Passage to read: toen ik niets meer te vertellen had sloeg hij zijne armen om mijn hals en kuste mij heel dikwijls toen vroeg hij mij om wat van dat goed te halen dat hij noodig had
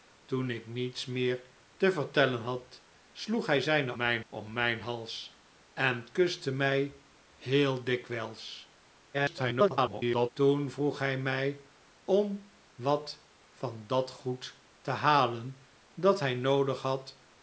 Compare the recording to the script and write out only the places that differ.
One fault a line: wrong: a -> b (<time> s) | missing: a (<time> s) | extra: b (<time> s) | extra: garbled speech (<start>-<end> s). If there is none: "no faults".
wrong: armen -> mijn (4.0 s)
extra: garbled speech (9.1-10.3 s)